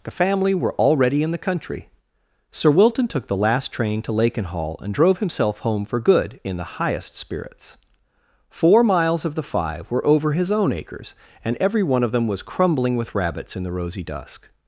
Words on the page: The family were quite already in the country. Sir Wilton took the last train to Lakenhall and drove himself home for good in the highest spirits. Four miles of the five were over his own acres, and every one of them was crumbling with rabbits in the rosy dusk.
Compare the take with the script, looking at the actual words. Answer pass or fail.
fail